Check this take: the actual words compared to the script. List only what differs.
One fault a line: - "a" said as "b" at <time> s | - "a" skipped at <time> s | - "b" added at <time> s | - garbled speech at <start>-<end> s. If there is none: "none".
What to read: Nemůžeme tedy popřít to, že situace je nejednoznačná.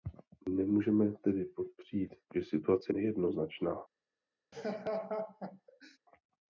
- "to" skipped at 2.1 s
- "je" skipped at 2.9 s